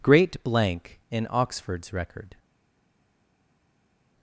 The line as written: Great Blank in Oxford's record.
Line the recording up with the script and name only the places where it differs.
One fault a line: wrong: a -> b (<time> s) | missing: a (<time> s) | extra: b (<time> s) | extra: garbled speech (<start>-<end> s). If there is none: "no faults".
no faults